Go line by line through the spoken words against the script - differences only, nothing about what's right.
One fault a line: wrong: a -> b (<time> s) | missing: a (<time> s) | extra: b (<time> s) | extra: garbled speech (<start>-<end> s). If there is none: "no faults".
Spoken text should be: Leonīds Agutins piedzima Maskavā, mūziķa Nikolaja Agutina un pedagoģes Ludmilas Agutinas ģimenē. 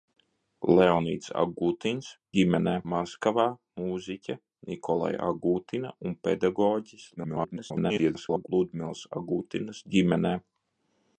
wrong: piedzima -> ģimenē (2.4 s)
extra: garbled speech (7.2-8.5 s)